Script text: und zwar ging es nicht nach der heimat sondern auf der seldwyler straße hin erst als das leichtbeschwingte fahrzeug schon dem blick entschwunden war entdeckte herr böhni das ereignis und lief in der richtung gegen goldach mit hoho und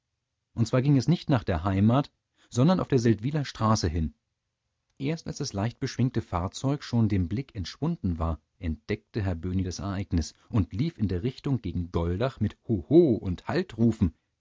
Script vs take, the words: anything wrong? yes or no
no